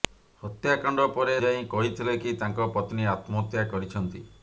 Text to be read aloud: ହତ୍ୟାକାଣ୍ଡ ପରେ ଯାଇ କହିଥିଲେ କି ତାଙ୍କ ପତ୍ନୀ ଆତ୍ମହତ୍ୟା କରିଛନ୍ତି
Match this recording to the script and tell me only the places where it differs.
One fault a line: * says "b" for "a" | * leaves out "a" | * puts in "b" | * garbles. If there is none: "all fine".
all fine